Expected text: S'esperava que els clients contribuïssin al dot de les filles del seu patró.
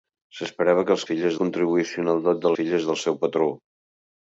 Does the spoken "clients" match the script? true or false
false